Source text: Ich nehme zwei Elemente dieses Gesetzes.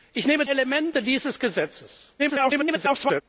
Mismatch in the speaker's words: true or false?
true